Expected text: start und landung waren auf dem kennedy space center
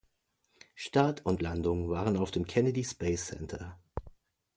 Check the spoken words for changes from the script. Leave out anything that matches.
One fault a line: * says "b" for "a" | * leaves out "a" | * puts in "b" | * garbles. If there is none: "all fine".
all fine